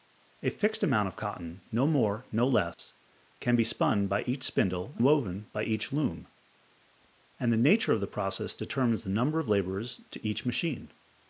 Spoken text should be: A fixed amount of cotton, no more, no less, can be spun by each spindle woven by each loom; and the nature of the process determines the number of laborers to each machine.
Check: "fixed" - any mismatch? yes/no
no